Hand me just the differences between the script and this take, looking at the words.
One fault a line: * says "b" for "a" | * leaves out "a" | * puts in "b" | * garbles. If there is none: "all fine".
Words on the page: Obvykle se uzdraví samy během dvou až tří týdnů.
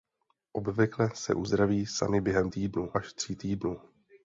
* says "týdnů" for "dvou"